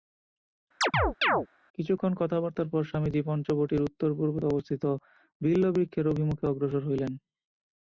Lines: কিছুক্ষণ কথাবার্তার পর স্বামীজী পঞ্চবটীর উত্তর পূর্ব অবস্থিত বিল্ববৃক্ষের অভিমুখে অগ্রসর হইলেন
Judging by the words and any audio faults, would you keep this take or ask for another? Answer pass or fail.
fail